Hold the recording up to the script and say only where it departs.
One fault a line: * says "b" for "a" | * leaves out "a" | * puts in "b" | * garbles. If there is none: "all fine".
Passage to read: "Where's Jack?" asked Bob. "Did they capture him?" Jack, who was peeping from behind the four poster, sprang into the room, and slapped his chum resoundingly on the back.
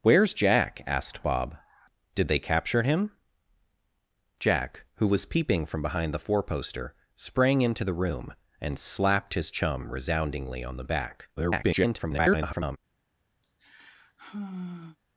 * garbles